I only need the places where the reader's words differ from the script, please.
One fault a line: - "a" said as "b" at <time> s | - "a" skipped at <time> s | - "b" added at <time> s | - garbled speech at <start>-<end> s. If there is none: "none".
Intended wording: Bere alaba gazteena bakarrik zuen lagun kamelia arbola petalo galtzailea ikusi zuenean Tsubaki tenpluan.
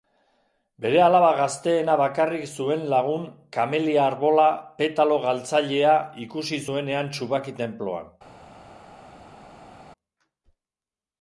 none